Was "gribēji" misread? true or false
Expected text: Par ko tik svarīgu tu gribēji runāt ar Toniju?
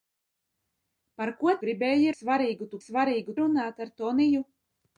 true